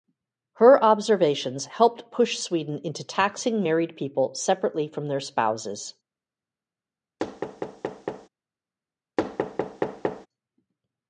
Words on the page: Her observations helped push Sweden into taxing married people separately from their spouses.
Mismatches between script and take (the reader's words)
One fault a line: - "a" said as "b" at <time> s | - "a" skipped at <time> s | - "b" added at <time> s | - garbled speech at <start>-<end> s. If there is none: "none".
none